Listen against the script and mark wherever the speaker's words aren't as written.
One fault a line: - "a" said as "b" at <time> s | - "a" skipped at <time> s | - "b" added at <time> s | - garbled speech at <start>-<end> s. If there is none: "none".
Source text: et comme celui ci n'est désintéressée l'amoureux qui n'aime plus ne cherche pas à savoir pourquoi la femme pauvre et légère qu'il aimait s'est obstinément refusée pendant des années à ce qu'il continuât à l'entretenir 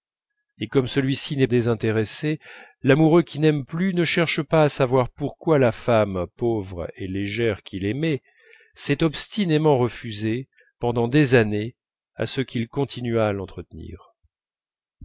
none